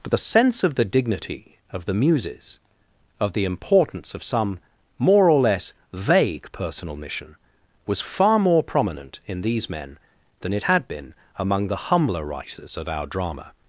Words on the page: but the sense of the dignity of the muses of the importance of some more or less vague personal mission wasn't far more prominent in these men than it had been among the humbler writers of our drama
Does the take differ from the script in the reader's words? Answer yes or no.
yes